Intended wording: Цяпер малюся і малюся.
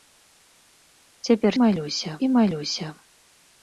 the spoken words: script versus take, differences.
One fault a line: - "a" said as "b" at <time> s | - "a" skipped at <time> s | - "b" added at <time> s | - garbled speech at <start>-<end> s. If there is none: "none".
none